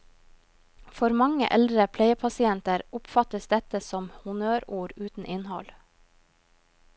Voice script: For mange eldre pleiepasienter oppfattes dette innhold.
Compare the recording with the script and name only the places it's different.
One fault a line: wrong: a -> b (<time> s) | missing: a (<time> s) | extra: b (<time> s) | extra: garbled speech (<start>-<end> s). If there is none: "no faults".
extra: som honnørord uten (3.9 s)